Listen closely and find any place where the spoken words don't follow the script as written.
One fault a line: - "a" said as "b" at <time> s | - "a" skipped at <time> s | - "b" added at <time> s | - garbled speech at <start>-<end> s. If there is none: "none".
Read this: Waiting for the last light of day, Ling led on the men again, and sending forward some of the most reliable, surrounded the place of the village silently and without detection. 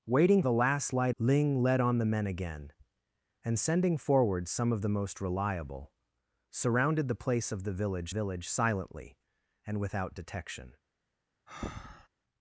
- "for" skipped at 0.4 s
- "of day" skipped at 1.1 s
- "village" added at 8.1 s